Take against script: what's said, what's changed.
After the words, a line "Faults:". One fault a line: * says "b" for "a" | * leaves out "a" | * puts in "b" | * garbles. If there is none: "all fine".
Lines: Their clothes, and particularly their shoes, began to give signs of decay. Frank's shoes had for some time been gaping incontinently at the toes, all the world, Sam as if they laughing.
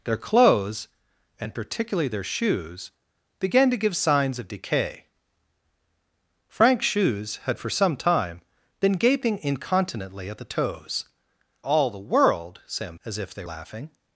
Their clothes, and particularly their shoes, began to give signs of decay. Frank's shoes had for some time been gaping incontinently at the toes, all the world, Sam as if they laughing.
Faults:
all fine